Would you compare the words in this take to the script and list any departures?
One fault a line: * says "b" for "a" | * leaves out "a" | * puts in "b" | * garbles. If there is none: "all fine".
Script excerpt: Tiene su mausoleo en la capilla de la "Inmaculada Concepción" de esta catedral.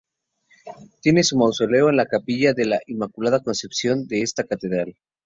all fine